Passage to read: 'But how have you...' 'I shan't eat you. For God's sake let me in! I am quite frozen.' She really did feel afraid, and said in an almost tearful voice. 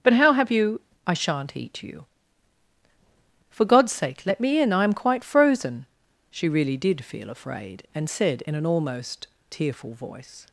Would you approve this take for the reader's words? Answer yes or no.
yes